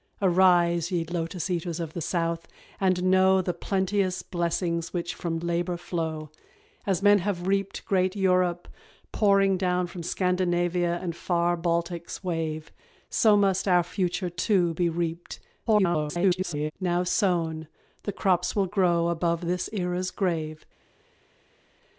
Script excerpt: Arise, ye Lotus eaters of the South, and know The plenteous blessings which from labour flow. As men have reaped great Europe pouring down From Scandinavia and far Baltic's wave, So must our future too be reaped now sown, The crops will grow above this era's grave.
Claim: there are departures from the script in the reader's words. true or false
true